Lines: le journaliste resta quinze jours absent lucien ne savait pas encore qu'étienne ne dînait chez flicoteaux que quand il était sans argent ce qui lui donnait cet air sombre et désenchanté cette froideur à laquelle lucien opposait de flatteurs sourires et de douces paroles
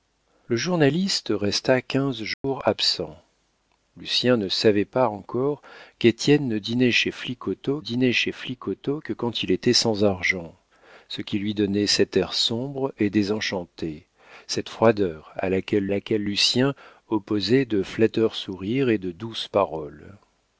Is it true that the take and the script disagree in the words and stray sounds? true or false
true